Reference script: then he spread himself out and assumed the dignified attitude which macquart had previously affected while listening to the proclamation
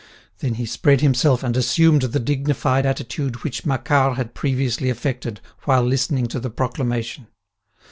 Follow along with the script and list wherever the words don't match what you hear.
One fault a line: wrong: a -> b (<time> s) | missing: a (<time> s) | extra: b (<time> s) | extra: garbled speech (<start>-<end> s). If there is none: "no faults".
missing: out (1.4 s)